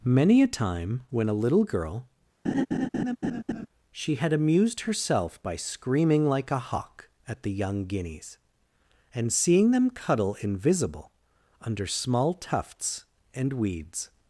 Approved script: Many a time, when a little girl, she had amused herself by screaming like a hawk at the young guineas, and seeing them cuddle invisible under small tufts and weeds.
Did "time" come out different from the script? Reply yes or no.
no